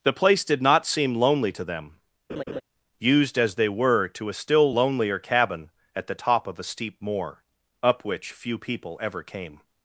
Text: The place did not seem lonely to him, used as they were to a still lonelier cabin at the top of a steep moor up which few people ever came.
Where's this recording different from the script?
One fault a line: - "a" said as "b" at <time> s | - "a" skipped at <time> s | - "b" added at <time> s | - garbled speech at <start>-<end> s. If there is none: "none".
- "him" said as "them" at 1.6 s